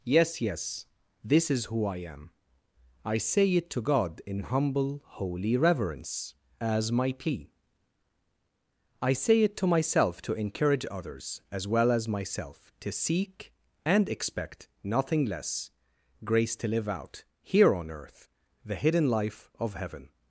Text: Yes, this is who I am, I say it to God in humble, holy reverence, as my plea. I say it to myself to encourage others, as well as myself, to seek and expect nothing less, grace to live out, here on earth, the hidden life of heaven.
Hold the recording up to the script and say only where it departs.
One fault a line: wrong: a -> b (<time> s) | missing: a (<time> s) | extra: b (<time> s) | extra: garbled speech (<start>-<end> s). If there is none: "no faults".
extra: yes (0.4 s)